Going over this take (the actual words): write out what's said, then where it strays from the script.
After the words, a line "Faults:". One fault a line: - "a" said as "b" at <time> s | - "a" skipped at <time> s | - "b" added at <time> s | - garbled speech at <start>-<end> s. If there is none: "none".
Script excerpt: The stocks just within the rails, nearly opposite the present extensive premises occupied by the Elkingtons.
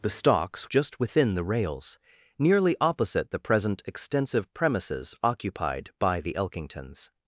The stocks just within the rails, nearly opposite the present extensive premises occupied by the Elkingtons.
Faults:
none